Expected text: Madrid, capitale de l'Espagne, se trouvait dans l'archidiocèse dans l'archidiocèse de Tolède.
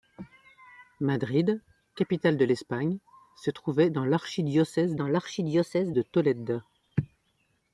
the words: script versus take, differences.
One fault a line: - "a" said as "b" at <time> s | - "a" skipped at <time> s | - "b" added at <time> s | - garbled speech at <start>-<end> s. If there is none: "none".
none